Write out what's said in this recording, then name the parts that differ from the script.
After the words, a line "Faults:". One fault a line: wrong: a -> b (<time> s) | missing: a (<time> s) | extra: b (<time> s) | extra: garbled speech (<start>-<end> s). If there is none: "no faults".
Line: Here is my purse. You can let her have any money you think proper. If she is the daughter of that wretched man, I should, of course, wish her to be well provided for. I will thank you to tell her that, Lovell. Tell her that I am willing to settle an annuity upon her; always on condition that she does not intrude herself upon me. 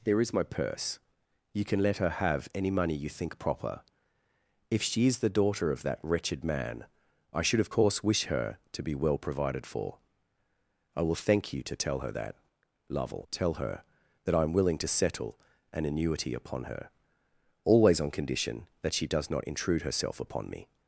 There is my purse. You can let her have any money you think proper. If she is the daughter of that wretched man, I should, of course, wish her to be well provided for. I will thank you to tell her that, Lovell. Tell her that I am willing to settle an annuity upon her; always on condition that she does not intrude herself upon me.
Faults:
wrong: Here -> There (0.0 s)